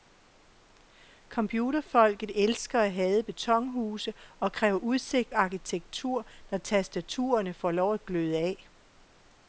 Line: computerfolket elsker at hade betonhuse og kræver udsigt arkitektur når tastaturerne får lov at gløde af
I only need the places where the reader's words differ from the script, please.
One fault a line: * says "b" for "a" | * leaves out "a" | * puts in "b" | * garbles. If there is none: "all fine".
all fine